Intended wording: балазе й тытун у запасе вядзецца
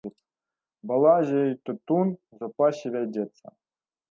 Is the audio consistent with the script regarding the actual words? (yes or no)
yes